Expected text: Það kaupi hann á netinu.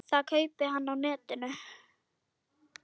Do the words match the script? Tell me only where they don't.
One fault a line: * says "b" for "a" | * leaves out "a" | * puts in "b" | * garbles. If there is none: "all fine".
all fine